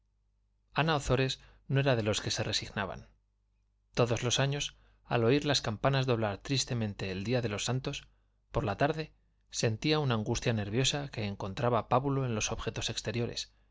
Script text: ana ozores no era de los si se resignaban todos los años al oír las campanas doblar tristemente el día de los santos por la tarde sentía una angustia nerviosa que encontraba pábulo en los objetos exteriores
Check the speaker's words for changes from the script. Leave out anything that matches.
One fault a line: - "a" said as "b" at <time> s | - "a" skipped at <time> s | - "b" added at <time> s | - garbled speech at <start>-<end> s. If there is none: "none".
- "si" said as "que" at 2.2 s